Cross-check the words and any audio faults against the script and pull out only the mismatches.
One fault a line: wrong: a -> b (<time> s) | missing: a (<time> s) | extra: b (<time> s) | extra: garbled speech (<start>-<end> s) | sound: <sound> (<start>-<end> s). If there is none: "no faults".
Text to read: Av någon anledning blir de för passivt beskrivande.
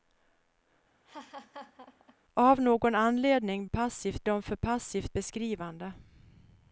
sound: laugh (1.0-2.2 s)
wrong: blir -> passivt (3.7 s)